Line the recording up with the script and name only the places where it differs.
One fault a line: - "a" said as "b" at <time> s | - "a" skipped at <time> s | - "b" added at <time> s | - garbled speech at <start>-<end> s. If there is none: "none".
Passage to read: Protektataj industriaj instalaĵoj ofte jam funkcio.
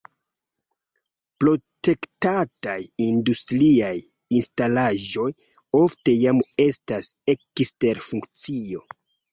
- "estas ekster" added at 6.7 s